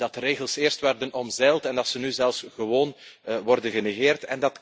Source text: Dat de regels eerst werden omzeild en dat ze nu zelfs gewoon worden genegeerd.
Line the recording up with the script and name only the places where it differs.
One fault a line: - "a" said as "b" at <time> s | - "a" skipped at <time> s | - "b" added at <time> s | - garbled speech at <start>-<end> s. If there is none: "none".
none